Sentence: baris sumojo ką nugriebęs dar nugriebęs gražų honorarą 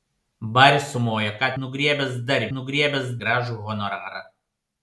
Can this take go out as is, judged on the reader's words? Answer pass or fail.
pass